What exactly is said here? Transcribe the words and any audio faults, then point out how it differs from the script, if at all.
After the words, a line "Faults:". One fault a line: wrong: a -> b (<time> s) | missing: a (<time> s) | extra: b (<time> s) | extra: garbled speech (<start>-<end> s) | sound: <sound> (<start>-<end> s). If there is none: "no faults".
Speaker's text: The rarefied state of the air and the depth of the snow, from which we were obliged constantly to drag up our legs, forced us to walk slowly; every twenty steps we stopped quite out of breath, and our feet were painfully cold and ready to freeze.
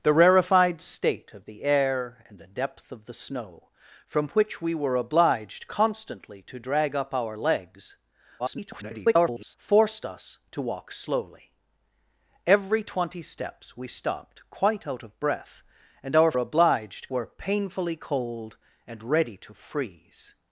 The rarefied state of the air and the depth of the snow, from which we were obliged constantly to drag up our legs, [garbled] forced us to walk slowly; every twenty steps we stopped quite out of breath, and our obliged were painfully cold and ready to freeze.
Faults:
extra: garbled speech (8.4-9.6 s)
wrong: feet -> obliged (16.4 s)